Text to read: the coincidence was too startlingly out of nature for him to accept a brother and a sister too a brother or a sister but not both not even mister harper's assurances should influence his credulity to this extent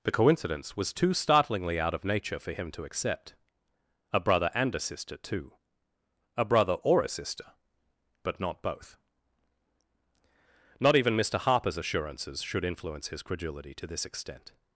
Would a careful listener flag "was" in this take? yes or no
no